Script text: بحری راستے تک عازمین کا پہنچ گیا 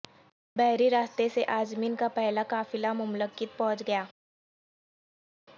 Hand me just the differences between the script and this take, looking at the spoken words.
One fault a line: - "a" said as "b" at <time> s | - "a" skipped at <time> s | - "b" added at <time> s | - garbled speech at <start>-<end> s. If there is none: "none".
- "تک" said as "سے" at 1.3 s
- "پہلا قافلہ مملکت" added at 2.1 s